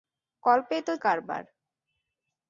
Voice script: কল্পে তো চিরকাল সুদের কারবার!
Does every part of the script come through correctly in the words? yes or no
no